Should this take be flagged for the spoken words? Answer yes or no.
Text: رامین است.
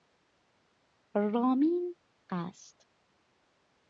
no